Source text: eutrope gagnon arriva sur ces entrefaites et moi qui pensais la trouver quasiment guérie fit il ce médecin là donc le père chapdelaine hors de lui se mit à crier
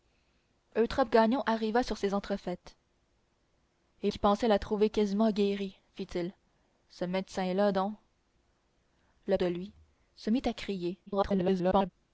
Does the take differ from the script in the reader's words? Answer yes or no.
yes